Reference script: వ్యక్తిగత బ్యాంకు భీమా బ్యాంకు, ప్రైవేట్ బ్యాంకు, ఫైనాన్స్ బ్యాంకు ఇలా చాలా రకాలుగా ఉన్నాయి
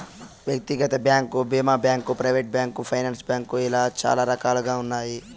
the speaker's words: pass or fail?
pass